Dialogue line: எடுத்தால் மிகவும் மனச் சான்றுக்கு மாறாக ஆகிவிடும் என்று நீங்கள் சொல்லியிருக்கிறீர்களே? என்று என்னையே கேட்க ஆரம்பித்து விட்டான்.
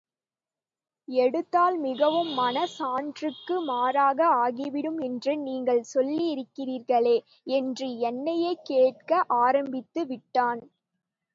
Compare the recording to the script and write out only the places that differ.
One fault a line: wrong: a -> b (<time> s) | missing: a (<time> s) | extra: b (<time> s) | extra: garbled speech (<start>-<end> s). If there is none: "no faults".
no faults